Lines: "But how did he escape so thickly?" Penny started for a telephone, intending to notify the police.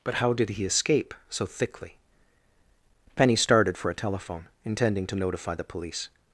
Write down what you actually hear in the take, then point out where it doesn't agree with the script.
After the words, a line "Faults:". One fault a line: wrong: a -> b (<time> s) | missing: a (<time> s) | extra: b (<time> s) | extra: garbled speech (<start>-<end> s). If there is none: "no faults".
"But how did he escape so thickly?" Penny started for a telephone, intending to notify the police.
Faults:
no faults